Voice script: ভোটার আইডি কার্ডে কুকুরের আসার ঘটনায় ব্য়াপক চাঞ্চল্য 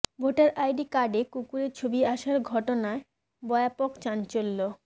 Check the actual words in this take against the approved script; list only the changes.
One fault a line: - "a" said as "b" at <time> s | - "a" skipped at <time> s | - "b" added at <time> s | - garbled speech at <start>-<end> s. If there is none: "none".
- "ছবি" added at 1.7 s